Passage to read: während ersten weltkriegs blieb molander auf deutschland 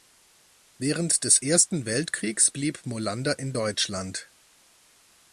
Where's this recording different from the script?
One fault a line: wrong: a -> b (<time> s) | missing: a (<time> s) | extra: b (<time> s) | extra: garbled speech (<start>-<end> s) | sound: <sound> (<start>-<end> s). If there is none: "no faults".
extra: des (1.2 s)
wrong: auf -> in (3.4 s)